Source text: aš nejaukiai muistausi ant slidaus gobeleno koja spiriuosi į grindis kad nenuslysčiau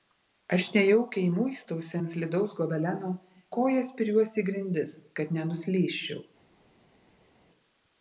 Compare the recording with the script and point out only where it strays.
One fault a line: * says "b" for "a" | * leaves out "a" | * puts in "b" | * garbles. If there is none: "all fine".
all fine